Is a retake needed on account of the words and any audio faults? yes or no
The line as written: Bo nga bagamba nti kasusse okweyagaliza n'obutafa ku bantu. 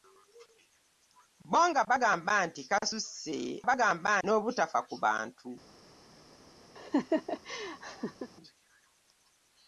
yes